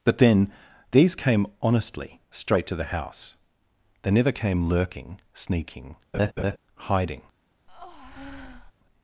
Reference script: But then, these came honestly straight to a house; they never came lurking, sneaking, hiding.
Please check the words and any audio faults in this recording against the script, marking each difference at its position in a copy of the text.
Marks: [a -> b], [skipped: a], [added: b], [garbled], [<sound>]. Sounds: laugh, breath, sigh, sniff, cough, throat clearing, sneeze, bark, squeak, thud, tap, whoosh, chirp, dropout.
But then, these came honestly straight to [a -> the] house; they never came lurking, sneaking, [laugh] hiding. [breath]